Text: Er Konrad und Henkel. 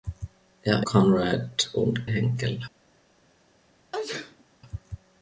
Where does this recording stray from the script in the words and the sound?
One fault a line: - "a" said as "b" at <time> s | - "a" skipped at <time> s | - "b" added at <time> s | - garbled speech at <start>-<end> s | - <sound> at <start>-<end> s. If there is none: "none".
- sneeze at 3.9-4.4 s